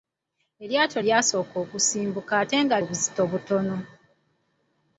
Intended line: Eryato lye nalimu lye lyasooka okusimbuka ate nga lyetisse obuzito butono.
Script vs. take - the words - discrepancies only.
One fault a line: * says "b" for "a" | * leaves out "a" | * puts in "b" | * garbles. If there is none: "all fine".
* leaves out "lye nalimu lye"
* leaves out "lyetisse"